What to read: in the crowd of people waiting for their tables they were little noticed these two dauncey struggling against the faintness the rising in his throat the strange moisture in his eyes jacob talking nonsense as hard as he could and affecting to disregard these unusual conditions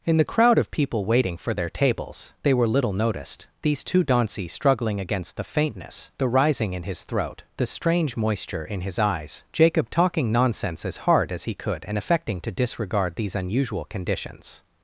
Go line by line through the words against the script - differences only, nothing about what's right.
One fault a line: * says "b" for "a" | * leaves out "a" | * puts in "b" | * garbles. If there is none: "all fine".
all fine